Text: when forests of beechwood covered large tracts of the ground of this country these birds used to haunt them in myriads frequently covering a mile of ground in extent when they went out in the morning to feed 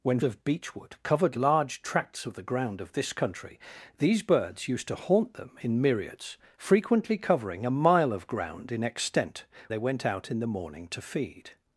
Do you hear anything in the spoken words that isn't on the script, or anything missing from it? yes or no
yes